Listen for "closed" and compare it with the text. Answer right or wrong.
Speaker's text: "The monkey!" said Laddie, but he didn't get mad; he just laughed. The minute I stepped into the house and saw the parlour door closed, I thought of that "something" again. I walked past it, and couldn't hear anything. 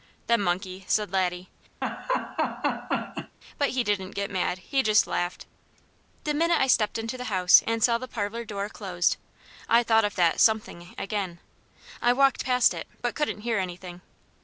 right